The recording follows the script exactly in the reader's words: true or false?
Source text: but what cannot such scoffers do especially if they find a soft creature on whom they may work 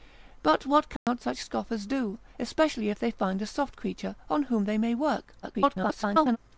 false